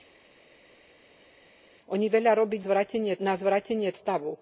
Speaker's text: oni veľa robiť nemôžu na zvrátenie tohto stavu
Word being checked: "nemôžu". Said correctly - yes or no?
no